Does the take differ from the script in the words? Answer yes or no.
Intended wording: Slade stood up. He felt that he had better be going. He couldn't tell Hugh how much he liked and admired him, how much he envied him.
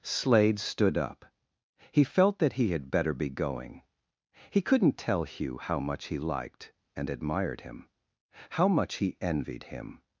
no